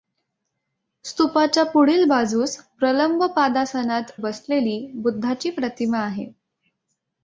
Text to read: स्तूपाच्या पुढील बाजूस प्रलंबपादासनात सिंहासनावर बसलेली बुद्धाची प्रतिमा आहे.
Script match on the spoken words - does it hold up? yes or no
no